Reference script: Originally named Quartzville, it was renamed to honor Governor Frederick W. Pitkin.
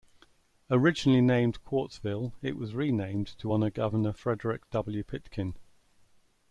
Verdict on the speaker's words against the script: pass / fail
pass